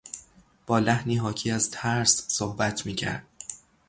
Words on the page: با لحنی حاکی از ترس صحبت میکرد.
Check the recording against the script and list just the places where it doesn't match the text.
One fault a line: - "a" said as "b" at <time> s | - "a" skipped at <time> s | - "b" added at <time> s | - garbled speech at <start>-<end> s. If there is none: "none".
none